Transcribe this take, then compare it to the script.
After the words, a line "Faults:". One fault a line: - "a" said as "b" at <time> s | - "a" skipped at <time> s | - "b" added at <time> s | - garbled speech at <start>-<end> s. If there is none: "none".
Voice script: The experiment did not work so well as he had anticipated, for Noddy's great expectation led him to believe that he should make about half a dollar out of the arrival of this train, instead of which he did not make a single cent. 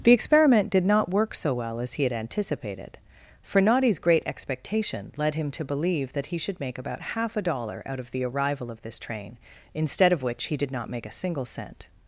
The experiment did not work so well as he had anticipated, for Noddy's great expectation led him to believe that he should make about half a dollar out of the arrival of this train, instead of which he did not make a single cent.
Faults:
none